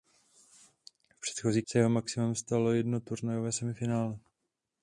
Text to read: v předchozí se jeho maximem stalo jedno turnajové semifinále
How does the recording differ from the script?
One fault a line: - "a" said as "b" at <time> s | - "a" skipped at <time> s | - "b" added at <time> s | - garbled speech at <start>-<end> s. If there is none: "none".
none